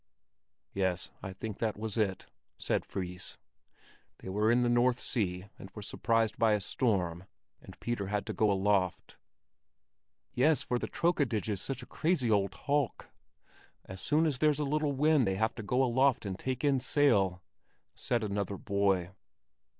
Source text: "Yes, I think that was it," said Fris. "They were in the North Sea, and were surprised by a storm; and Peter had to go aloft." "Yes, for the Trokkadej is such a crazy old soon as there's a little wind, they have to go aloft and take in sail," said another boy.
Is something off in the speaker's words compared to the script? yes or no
yes